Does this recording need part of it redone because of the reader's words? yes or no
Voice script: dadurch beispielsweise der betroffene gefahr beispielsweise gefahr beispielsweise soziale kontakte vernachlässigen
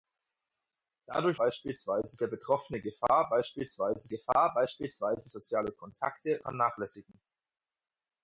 no